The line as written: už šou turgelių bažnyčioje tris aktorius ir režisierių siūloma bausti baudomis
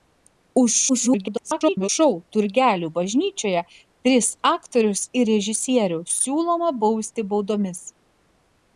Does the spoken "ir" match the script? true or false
true